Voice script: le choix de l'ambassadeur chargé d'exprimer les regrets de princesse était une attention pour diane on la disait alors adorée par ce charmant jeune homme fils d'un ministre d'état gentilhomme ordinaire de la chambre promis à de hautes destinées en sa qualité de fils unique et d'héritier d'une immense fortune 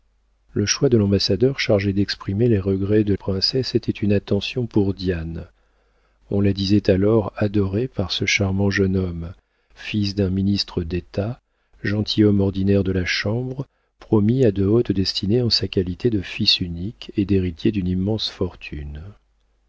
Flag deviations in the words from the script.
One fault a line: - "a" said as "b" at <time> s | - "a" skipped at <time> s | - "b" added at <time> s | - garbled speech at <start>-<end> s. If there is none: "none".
none